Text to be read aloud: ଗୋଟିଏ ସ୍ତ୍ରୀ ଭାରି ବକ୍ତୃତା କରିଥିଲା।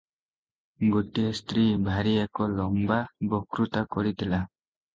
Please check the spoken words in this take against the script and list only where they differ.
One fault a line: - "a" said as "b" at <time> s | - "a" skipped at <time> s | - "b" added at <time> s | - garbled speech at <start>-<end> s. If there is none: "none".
- "ଏକ ଲମ୍ବା" added at 2.2 s